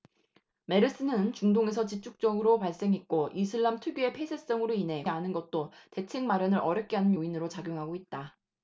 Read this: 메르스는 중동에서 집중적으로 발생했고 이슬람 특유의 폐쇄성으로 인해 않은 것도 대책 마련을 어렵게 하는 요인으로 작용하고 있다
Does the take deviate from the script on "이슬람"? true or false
false